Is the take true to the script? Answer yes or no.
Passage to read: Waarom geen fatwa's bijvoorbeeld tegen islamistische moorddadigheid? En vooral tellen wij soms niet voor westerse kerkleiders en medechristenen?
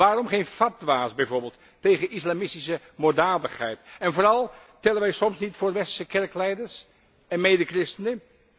yes